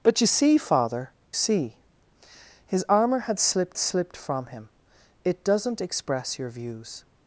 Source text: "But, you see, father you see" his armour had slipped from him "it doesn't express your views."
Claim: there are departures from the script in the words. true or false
true